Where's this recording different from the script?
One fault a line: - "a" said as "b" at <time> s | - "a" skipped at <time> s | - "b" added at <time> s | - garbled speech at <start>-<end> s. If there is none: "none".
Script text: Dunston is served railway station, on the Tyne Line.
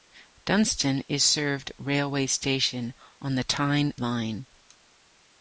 none